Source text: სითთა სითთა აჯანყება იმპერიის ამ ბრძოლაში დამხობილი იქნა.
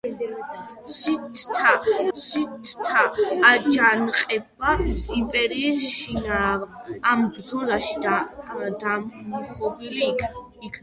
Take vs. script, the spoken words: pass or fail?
pass